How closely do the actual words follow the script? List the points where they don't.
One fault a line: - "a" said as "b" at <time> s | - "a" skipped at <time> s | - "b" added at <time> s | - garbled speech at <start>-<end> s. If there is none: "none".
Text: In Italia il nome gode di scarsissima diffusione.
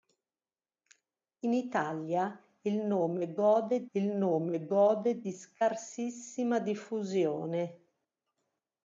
- "il nome gode" added at 3.9 s